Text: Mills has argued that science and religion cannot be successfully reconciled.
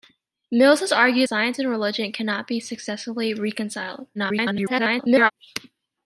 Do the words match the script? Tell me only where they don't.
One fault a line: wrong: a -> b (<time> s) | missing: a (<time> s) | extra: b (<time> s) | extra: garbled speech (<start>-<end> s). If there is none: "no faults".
missing: that (1.3 s)
extra: garbled speech (4.1-5.3 s)